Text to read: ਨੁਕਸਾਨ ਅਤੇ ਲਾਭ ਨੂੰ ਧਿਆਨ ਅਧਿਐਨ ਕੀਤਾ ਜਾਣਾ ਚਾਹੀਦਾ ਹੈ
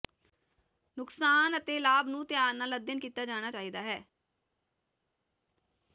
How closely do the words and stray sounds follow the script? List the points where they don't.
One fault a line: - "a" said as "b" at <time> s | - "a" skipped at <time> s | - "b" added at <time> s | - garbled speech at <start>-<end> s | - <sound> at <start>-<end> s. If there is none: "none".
- "ਨਾਲ" added at 2.5 s